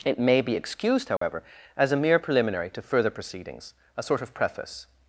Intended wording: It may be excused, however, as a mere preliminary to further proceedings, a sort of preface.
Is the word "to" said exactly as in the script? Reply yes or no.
yes